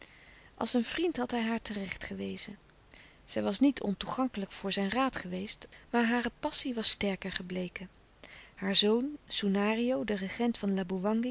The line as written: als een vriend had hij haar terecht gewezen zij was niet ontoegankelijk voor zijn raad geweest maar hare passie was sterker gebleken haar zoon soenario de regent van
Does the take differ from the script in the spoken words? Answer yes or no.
no